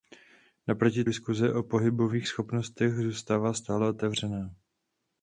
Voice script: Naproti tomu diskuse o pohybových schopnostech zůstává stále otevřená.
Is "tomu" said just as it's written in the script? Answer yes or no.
no